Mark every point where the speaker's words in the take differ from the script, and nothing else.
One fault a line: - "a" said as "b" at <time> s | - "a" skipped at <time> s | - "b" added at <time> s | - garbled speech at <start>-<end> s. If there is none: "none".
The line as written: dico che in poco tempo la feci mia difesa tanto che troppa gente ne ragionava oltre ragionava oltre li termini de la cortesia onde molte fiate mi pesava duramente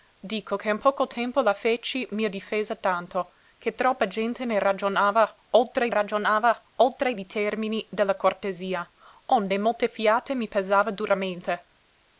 none